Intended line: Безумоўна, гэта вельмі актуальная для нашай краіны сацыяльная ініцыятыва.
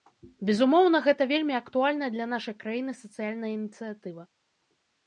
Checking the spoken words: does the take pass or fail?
pass